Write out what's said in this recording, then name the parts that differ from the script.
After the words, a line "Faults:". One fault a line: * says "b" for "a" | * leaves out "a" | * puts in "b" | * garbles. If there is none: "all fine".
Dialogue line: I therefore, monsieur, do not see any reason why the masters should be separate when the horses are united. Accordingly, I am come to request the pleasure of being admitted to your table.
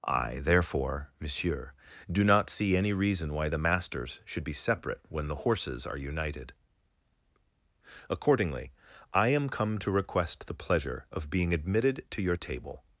I therefore, monsieur, do not see any reason why the masters should be separate when the horses are united. Accordingly, I am come to request the pleasure of being admitted to your table.
Faults:
all fine